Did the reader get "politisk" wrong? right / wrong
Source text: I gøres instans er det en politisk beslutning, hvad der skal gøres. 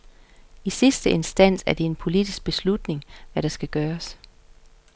right